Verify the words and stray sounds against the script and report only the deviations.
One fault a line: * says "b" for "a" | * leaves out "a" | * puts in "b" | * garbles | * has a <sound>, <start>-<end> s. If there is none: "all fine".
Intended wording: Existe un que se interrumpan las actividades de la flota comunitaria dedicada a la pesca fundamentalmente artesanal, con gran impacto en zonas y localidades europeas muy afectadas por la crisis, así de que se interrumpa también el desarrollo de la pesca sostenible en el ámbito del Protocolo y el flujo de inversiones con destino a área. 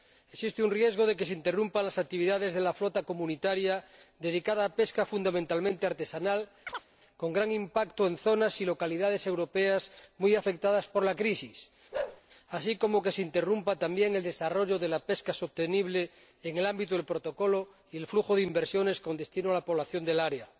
* puts in "riesgo de"
* has a chirp, 6.7-6.9 s
* has a bark, 11.9-12.2 s
* puts in "como"
* puts in "la población del"